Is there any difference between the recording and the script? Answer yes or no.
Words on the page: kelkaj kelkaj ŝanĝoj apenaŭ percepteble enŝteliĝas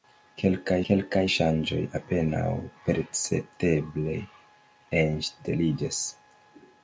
no